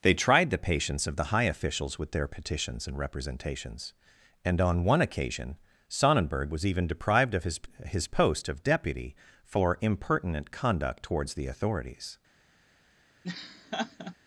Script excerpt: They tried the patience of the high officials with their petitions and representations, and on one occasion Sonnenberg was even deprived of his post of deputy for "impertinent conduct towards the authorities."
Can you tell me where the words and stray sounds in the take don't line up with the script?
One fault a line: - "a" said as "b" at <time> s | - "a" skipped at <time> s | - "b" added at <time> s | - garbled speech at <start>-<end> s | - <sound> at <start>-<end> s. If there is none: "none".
- "his" added at 7.8 s
- laugh at 13.2-14.1 s